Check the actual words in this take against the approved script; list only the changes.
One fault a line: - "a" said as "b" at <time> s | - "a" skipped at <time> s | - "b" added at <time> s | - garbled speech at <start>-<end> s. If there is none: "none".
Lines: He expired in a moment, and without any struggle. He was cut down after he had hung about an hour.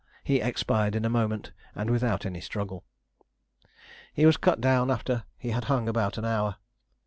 none